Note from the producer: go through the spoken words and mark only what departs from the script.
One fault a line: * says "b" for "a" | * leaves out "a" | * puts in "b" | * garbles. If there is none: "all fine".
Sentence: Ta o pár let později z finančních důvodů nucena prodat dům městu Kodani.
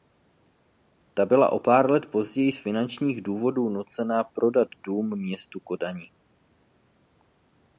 * puts in "byla"